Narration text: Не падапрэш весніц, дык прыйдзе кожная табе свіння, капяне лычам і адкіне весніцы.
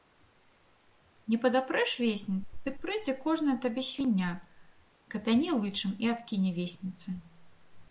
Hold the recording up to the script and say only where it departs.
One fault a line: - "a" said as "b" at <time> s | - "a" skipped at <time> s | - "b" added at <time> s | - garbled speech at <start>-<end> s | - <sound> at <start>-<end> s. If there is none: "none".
none